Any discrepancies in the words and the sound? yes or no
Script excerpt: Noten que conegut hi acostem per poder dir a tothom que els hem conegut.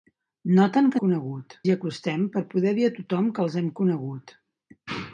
no